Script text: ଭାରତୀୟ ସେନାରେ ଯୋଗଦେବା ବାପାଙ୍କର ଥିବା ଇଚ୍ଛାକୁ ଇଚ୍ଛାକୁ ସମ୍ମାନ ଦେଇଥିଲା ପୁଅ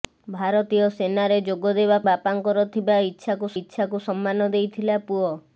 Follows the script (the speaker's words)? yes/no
yes